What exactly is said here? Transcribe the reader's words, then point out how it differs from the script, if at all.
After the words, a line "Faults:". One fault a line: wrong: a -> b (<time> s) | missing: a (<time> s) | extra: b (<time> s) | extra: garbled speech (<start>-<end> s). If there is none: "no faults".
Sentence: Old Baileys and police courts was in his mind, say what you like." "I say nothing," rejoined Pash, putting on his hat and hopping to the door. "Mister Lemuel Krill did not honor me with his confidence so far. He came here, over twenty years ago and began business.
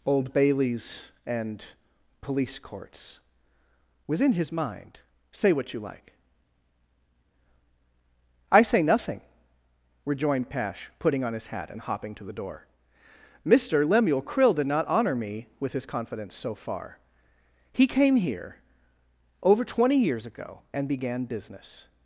Old Baileys and police courts was in his mind, say what you like." "I say nothing," rejoined Pash, putting on his hat and hopping to the door. "Mister Lemuel Krill did not honor me with his confidence so far. He came here, over twenty years ago and began business.
Faults:
no faults